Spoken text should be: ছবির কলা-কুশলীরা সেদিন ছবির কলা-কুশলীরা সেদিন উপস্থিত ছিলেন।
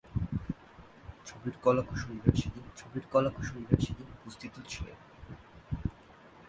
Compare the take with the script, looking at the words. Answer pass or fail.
pass